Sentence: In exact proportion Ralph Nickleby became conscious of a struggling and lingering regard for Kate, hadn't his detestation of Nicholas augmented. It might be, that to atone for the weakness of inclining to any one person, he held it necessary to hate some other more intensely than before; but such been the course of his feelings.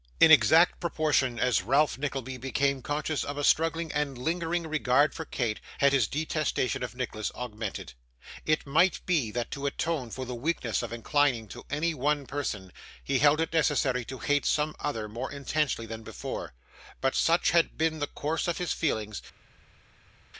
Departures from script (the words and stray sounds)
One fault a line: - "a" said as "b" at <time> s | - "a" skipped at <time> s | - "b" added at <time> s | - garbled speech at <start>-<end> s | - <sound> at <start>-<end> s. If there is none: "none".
- "as" added at 1.4 s
- "hadn't" said as "had" at 5.8 s
- "had" added at 17.5 s